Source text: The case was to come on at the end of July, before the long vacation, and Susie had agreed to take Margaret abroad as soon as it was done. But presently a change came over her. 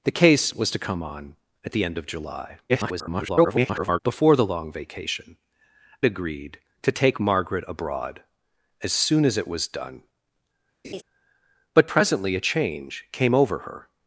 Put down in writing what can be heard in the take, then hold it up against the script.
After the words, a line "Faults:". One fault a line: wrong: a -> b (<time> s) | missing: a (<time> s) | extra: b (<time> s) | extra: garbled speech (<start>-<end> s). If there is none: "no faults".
The case was to come on at the end of July, [garbled] before the long vacation, agreed to take Margaret abroad as soon as it was done. But presently a change came over her.
Faults:
extra: garbled speech (2.7-4.0 s)
missing: and Susie had (5.4 s)